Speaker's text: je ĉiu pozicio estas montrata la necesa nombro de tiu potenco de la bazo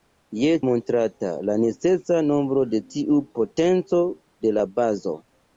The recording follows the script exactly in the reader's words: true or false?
false